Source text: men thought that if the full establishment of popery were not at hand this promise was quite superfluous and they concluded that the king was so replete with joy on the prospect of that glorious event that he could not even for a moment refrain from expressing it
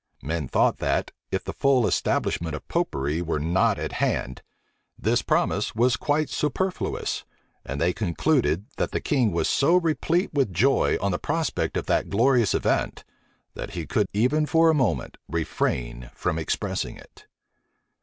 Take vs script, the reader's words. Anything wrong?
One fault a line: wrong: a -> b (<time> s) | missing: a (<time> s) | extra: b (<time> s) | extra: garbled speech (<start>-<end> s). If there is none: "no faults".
missing: not (14.1 s)